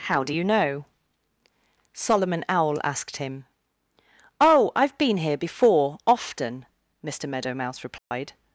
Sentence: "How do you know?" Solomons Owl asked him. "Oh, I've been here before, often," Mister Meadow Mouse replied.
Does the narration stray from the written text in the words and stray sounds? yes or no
yes